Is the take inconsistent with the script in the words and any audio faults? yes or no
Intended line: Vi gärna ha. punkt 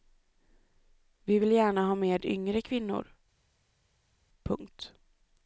yes